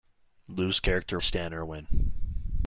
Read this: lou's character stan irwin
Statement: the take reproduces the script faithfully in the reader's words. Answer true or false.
true